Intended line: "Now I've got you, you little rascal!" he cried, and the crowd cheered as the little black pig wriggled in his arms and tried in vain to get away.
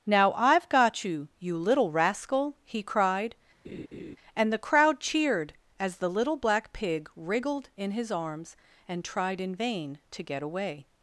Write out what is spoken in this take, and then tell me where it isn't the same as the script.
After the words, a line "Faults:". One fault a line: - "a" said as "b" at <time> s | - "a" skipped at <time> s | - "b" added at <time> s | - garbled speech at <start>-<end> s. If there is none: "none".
"Now I've got you, you little rascal!" he cried, and the crowd cheered as the little black pig wriggled in his arms and tried in vain to get away.
Faults:
none